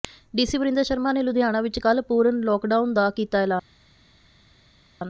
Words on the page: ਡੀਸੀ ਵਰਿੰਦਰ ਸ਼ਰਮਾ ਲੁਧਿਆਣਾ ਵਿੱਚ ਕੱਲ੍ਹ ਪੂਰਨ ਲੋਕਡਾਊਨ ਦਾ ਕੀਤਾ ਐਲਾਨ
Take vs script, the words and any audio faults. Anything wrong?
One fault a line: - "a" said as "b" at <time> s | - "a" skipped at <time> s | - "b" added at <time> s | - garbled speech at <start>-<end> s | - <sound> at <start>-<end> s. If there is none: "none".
- "ਨੇ" added at 1.1 s